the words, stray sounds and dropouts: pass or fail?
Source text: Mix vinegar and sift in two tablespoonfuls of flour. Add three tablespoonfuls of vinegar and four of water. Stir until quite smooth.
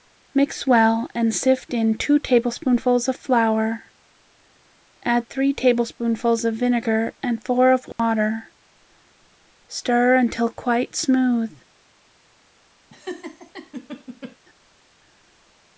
fail